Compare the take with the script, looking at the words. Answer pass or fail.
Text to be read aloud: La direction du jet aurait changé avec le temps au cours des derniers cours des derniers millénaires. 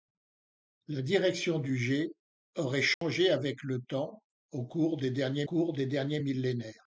pass